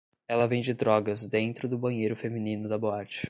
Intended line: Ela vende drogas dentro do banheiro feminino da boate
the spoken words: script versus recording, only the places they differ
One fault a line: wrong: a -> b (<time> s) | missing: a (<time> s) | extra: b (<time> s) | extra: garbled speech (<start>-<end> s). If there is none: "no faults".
no faults